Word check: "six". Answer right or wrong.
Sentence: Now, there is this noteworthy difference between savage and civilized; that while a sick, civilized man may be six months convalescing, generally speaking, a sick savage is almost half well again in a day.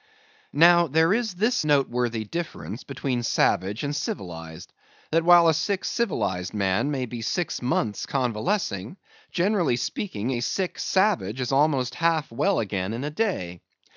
right